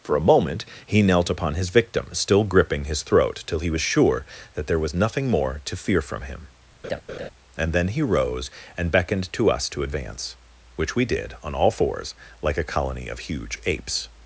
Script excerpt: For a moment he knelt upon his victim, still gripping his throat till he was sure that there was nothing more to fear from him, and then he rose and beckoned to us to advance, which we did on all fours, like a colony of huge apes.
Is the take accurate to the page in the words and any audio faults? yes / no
no